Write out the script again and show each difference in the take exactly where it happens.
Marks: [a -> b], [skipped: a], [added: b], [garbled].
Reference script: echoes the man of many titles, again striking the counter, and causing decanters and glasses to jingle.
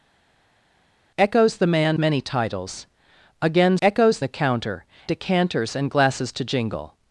echoes the man [skipped: of] many titles, again [striking -> echoes] the counter, [skipped: and causing] decanters and glasses to jingle.